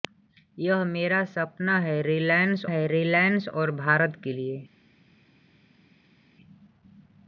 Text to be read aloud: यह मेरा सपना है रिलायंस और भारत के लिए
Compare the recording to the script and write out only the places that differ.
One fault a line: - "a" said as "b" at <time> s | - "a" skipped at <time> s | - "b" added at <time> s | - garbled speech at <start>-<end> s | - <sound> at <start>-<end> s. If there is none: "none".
- "है रिलायंस" added at 2.6 s